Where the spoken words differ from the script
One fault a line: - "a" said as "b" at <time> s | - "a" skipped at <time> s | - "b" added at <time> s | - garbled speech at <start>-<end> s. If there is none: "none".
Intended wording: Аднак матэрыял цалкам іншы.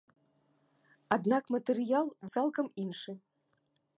none